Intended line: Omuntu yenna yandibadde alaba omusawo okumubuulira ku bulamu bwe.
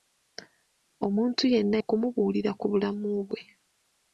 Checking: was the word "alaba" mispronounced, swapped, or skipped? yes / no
yes